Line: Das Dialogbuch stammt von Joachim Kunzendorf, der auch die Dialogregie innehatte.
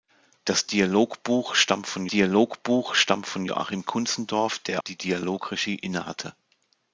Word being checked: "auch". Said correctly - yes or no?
no